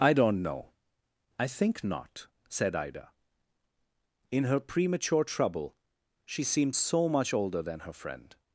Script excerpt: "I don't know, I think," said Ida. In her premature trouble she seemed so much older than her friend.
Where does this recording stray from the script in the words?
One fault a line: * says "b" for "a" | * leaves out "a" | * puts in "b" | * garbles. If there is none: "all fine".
* puts in "not"